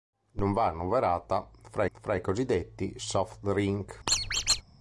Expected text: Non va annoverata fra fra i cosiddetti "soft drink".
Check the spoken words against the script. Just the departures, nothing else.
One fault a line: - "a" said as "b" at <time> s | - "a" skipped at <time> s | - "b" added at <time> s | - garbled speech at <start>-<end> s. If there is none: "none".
none